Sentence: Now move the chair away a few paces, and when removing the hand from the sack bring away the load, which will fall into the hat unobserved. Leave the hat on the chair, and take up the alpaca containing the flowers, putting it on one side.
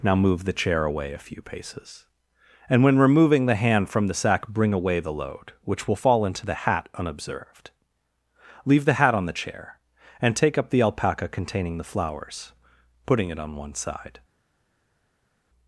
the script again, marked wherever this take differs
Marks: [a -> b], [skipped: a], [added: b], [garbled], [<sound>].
Now move the chair away a few paces, and when removing the hand from the sack bring away the load, which will fall into the hat unobserved. Leave the hat on the chair, and take up the alpaca containing the flowers, putting it on one side.